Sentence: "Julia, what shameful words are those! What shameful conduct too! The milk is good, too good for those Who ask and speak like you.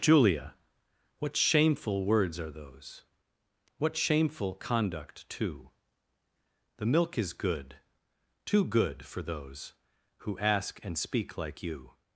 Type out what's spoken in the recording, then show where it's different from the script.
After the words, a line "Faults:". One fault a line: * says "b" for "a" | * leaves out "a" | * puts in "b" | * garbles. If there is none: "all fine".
"Julia, what shameful words are those! What shameful conduct too! The milk is good, too good for those Who ask and speak like you.
Faults:
all fine